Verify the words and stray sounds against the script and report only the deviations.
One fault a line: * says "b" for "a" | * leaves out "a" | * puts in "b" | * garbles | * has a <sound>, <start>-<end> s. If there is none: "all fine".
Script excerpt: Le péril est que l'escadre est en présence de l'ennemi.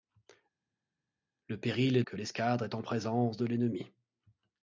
all fine